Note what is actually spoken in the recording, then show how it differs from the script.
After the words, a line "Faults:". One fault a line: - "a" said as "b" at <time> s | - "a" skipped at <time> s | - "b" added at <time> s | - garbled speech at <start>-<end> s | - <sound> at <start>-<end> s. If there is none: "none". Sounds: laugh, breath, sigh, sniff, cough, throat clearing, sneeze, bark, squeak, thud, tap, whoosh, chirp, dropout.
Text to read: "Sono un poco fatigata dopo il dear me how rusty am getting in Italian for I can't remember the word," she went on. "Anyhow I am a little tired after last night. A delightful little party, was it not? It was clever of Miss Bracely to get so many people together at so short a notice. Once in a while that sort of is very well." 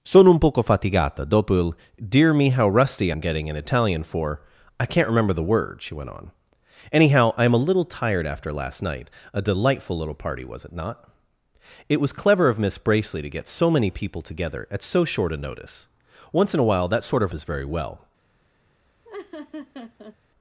"Sono un poco fatigata dopo il dear me how rusty am getting in Italian for I can't remember the word," she went on. "Anyhow I am a little tired after last night. A delightful little party, was it not? It was clever of Miss Bracely to get so many people together at so short a notice. Once in a while that sort of is very well."
Faults:
- laugh at 19.0-20.2 s